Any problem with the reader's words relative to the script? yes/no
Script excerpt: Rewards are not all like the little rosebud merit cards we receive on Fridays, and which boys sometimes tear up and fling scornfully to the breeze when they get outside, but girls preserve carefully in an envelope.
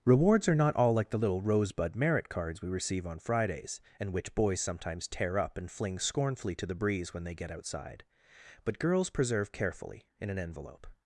no